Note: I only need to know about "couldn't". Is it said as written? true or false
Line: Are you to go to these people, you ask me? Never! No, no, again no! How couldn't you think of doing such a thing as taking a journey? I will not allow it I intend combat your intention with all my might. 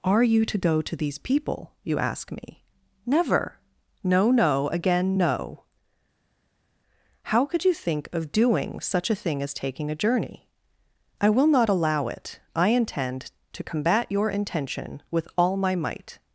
false